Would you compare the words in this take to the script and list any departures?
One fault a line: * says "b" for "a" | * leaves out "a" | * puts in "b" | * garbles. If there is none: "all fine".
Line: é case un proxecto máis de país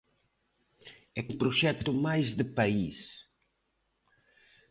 * leaves out "case"